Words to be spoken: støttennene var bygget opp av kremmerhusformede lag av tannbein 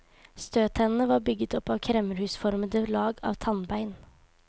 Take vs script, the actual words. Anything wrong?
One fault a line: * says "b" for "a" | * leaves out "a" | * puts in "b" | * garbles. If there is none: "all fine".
all fine